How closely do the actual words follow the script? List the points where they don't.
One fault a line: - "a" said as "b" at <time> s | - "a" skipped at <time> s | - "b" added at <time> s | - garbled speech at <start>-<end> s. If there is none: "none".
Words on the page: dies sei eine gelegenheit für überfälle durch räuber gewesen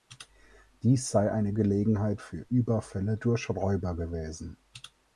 none